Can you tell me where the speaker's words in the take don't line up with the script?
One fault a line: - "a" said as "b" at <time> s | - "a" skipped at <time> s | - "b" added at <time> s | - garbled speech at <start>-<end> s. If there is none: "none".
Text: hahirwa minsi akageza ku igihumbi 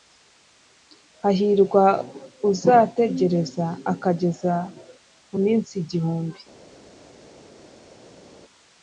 - "minsi" said as "uzategereza" at 2.5 s
- "minsi" added at 5.4 s